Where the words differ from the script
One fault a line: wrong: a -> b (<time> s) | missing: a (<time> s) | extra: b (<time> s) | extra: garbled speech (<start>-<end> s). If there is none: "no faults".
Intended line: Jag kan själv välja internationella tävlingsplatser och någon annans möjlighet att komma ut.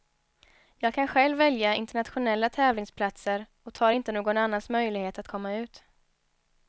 extra: tar inte (3.7 s)